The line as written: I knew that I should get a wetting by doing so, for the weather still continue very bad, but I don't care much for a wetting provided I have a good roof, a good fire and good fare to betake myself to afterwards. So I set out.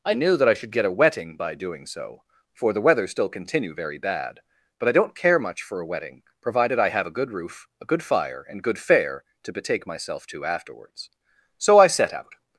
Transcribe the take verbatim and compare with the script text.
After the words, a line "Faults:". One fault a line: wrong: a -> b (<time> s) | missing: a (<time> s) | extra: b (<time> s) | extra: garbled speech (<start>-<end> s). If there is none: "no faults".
I knew that I should get a wetting by doing so, for the weather still continue very bad, but I don't care much for a wetting provided I have a good roof, a good fire and good fare to betake myself to afterwards. So I set out.
Faults:
no faults